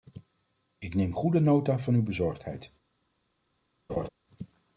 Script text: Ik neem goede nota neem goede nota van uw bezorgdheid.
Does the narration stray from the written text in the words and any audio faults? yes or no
yes